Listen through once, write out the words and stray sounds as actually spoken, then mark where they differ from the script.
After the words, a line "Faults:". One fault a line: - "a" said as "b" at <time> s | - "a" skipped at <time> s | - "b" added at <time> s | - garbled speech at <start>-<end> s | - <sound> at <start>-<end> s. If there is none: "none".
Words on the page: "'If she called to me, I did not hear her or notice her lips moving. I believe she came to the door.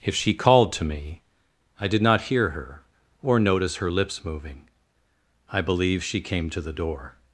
"'If she called to me, I did not hear her or notice her lips moving. I believe she came to the door.
Faults:
none